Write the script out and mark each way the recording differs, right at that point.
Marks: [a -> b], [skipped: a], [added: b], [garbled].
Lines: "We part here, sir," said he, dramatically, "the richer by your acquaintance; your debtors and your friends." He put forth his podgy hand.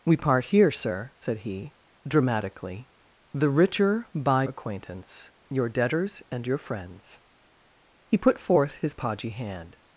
"We part here, sir," said he, dramatically, "the richer by [skipped: your] acquaintance; your debtors and your friends." He put forth his podgy hand.